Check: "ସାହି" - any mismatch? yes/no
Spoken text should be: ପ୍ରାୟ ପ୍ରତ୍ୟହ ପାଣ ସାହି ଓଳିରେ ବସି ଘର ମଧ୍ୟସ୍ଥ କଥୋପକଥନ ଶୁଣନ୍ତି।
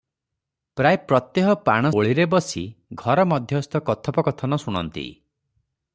yes